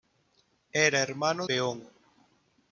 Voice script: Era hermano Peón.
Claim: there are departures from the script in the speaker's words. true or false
false